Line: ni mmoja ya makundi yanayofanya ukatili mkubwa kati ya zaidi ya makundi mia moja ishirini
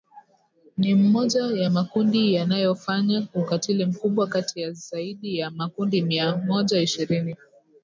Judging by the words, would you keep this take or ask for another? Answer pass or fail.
pass